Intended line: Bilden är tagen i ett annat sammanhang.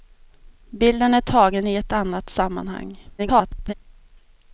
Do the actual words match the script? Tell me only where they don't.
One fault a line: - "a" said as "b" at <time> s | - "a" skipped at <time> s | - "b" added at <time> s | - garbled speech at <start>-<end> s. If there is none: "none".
- garbled speech at 3.2-3.7 s